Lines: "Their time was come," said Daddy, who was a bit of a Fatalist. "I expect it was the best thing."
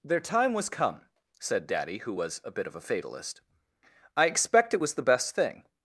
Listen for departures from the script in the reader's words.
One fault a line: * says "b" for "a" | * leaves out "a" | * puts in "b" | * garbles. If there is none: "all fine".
all fine